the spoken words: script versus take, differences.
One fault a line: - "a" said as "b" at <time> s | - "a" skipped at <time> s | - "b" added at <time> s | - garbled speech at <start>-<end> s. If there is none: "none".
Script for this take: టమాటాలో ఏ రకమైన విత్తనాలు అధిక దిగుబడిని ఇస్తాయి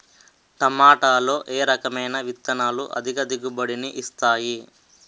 none